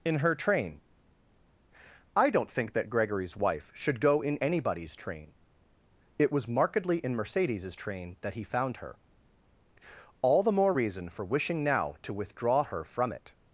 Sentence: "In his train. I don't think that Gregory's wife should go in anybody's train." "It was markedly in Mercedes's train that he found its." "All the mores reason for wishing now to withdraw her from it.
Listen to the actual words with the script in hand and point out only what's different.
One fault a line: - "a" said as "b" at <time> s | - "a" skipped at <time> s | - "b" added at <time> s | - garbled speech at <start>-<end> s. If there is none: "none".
- "his" said as "her" at 0.2 s
- "its" said as "her" at 8.8 s
- "mores" said as "more" at 10.5 s